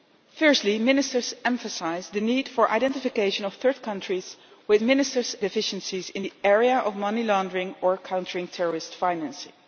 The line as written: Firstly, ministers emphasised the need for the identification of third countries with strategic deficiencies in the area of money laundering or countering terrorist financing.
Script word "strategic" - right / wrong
wrong